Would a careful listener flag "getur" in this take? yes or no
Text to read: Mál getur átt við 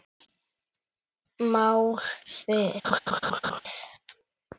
yes